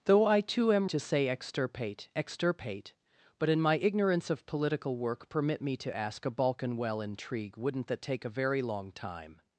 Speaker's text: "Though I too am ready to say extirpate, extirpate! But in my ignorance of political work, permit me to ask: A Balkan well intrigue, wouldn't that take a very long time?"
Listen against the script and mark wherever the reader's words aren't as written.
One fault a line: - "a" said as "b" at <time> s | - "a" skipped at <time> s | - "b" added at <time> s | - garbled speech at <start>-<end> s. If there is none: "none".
- "ready" skipped at 0.9 s